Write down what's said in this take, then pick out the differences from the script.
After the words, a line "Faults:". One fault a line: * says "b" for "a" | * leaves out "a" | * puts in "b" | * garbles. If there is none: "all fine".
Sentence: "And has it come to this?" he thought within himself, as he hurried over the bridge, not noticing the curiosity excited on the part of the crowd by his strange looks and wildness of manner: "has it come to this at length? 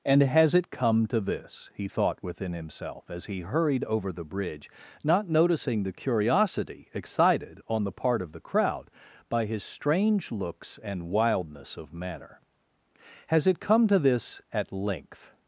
"And has it come to this?" he thought within himself, as he hurried over the bridge, not noticing the curiosity excited on the part of the crowd by his strange looks and wildness of manner: "has it come to this at length?
Faults:
all fine